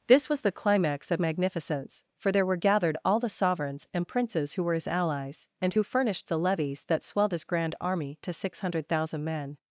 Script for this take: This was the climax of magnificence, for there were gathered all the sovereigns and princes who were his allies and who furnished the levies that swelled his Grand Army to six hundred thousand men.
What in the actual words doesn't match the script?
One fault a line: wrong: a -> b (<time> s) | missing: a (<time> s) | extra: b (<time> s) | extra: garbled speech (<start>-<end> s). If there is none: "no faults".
no faults